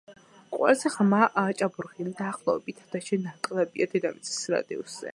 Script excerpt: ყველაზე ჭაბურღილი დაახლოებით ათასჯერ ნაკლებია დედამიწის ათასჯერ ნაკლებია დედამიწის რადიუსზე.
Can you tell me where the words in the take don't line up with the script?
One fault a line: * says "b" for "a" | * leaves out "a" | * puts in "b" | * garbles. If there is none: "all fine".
* puts in "ღრმა"
* leaves out "ათასჯერ ნაკლებია დედამიწის"